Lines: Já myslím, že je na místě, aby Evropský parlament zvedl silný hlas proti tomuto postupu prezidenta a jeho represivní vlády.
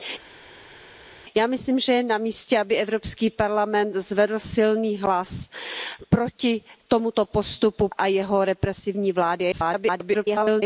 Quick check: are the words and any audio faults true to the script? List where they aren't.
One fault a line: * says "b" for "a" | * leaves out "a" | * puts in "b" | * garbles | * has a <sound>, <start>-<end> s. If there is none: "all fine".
* leaves out "prezidenta"
* garbles